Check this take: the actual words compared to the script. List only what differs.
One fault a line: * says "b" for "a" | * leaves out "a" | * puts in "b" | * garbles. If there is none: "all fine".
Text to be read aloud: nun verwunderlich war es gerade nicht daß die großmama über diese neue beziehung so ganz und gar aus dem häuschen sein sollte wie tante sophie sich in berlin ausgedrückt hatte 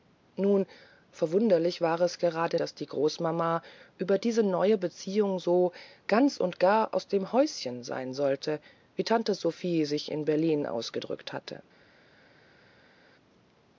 * leaves out "nicht"